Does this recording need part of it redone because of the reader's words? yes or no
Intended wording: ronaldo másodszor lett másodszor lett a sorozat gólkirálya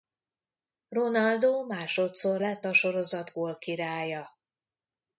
yes